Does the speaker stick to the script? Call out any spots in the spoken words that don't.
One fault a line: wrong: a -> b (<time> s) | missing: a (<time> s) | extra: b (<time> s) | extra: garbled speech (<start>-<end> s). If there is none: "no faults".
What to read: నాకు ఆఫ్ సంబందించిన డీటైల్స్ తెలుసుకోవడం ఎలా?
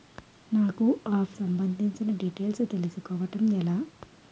no faults